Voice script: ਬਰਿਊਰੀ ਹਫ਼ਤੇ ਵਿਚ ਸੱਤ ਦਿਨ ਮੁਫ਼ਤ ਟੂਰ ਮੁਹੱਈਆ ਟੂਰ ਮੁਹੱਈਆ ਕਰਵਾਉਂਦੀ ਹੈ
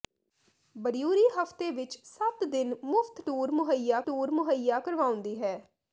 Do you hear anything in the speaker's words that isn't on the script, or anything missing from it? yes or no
no